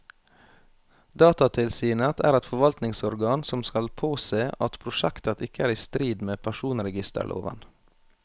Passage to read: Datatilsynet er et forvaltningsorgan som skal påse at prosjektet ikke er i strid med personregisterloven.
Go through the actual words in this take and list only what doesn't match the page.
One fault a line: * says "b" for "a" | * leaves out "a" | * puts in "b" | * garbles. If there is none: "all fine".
all fine